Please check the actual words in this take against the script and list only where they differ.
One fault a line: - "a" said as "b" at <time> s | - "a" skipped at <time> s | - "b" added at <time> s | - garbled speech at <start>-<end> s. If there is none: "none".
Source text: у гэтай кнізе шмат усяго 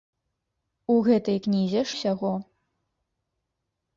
- "шмат" skipped at 1.8 s